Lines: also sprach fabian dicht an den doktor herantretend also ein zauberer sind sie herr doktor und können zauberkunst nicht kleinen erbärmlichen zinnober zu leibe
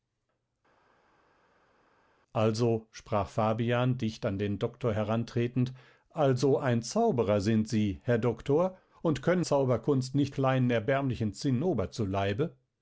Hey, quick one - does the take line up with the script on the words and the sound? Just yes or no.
yes